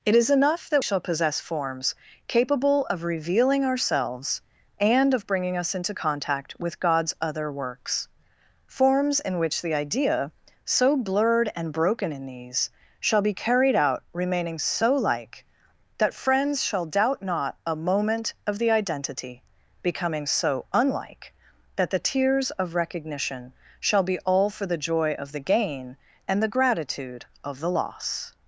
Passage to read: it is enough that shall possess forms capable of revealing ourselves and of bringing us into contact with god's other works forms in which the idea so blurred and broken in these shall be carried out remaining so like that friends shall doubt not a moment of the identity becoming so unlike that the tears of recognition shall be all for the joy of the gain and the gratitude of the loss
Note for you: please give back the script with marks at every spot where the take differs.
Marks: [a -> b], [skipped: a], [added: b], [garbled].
it is enough that shall possess forms capable of revealing ourselves and of bringing us into contact with god's other works forms in which the idea so blurred and broken in these shall be carried out remaining so like that friends shall doubt not a moment of the identity becoming so unlike that the tears of recognition shall be all for the joy of the gain and the gratitude of the loss